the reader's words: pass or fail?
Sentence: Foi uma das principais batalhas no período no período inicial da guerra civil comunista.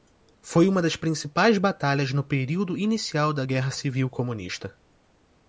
fail